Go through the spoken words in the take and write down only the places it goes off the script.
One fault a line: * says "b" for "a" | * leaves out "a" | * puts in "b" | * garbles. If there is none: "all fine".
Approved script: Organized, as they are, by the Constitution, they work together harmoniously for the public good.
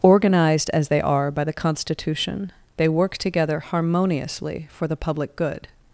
all fine